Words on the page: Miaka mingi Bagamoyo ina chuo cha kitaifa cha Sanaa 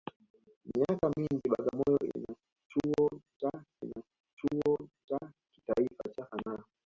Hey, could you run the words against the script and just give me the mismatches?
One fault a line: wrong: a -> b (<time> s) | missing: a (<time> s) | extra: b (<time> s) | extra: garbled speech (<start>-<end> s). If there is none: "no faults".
extra: ina chuo cha (3.8 s)